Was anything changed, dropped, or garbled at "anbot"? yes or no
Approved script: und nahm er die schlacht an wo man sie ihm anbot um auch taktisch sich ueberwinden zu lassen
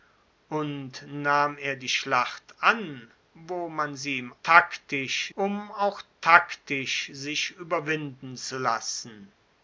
yes